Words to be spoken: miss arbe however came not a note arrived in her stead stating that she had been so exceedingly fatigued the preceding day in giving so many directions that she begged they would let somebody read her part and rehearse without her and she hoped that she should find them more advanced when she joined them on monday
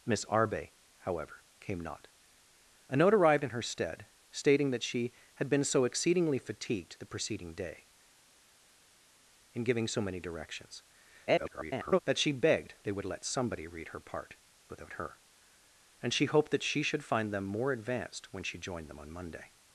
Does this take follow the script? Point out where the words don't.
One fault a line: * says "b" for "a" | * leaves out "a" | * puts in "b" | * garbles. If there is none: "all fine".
* garbles
* leaves out "and rehearse"